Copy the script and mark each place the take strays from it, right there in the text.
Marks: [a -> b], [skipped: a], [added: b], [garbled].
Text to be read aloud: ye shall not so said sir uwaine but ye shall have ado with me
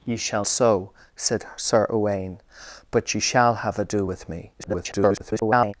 ye shall [skipped: not] so said sir uwaine but ye shall have ado with me [garbled]